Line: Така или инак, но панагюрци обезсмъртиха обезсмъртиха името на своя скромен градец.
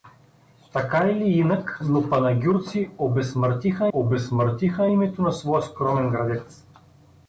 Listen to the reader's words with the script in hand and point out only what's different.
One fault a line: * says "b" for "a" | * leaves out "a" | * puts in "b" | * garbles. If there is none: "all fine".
all fine